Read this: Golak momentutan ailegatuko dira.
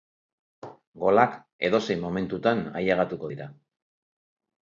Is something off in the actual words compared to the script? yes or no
yes